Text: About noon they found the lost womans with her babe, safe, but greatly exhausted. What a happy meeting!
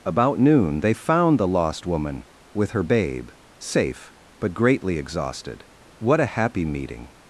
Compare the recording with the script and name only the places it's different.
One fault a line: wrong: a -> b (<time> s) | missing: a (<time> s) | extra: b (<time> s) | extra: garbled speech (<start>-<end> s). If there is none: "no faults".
wrong: womans -> woman (1.9 s)